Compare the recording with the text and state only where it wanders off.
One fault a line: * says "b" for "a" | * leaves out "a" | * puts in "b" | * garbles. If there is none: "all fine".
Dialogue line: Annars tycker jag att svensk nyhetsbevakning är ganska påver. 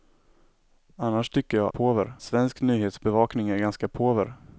* says "påver" for "att"